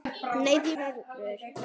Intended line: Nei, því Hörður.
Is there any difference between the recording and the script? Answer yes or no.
no